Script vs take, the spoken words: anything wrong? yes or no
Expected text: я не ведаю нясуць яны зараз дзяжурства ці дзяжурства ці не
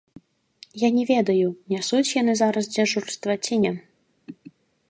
yes